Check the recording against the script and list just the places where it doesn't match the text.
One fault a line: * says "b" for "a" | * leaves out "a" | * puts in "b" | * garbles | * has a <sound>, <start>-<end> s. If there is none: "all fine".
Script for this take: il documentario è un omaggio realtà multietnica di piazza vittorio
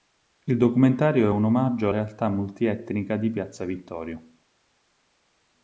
all fine